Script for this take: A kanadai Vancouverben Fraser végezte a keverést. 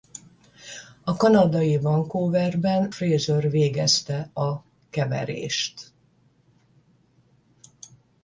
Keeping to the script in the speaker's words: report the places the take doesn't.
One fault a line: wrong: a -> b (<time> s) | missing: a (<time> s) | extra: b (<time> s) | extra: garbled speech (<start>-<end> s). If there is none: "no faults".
no faults